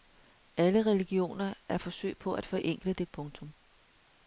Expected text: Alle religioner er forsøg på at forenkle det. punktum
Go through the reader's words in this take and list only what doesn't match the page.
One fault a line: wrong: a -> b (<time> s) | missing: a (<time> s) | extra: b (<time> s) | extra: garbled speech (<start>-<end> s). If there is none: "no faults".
no faults